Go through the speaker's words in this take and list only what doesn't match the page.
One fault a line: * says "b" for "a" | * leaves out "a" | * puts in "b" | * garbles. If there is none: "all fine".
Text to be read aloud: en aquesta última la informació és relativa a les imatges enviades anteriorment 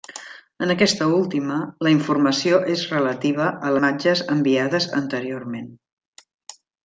* leaves out "les"